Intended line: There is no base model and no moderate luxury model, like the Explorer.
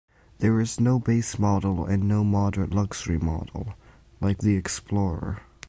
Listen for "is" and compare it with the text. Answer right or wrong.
right